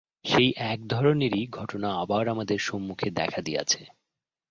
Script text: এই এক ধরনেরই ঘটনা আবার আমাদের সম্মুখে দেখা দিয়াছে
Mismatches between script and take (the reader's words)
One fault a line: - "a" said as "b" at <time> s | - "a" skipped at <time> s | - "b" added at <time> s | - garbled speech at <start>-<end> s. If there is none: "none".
- "এই" said as "সেই" at 0.2 s